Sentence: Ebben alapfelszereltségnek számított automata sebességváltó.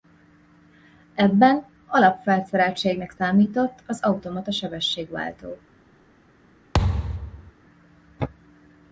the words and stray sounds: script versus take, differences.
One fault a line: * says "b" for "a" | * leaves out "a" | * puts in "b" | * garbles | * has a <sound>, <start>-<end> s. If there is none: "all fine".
* puts in "az"
* has a thud, 6.7-7.5 s